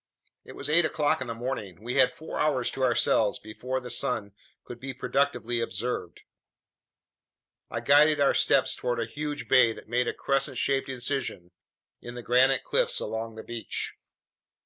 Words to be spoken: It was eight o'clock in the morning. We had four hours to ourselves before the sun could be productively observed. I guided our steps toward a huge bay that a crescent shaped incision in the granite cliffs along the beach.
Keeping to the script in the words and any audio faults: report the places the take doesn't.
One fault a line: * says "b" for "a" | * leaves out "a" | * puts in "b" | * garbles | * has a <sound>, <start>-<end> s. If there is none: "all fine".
* puts in "made"